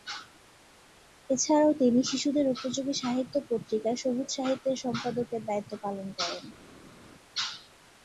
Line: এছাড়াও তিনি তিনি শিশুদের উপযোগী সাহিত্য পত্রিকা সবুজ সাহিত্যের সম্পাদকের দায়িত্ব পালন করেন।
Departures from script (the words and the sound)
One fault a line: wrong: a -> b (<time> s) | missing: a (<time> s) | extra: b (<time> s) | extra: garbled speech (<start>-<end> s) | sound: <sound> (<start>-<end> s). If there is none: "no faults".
missing: তিনি (2.0 s)